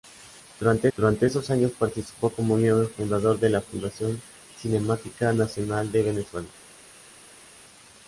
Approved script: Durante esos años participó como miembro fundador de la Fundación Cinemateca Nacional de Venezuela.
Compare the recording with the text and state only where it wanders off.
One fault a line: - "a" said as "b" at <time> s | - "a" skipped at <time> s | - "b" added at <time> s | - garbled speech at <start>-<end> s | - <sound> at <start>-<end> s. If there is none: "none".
- "durante" added at 1.0 s